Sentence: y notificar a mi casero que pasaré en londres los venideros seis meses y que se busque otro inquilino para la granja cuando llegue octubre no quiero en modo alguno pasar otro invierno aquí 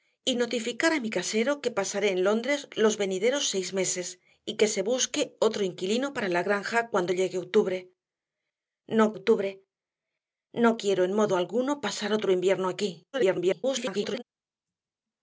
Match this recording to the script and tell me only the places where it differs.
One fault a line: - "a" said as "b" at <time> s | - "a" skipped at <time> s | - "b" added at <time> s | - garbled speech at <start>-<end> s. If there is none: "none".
- "octubre no" added at 9.1 s
- garbled speech at 13.1-14.2 s